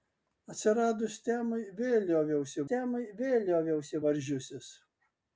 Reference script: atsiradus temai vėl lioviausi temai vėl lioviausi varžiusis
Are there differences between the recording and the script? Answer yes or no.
no